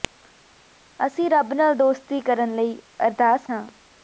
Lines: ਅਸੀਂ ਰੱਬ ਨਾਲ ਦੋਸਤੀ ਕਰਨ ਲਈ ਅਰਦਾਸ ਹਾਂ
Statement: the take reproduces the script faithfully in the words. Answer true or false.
true